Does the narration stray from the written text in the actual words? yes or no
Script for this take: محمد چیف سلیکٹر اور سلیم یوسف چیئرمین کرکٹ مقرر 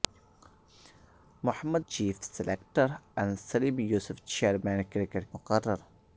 no